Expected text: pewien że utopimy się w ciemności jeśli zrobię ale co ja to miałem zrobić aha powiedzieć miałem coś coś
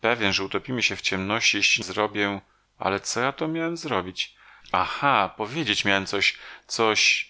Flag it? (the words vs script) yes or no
no